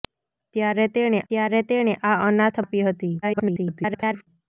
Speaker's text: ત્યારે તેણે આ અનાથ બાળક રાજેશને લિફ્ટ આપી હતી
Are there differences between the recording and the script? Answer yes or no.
yes